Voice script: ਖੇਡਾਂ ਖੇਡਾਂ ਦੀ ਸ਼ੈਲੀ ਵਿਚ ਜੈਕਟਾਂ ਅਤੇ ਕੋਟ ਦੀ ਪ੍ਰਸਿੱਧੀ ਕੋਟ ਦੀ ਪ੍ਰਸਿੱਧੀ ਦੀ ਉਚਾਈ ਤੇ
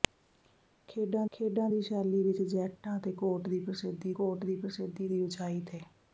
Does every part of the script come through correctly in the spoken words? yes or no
yes